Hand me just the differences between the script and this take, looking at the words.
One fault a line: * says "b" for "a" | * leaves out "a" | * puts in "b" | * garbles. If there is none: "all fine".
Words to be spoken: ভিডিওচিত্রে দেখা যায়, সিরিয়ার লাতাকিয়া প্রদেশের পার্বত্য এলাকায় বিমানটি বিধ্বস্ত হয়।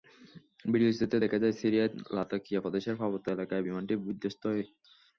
all fine